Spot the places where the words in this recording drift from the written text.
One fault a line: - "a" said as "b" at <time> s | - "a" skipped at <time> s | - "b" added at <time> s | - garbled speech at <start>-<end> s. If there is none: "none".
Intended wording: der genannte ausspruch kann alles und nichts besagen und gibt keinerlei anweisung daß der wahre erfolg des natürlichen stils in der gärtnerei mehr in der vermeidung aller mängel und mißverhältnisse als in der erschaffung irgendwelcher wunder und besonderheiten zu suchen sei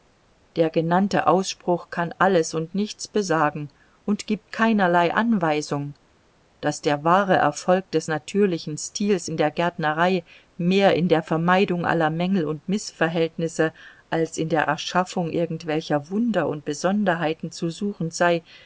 none